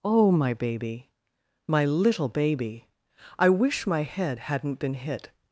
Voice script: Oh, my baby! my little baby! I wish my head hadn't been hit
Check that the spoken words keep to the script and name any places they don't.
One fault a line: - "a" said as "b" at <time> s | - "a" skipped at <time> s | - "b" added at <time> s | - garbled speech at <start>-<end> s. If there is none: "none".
none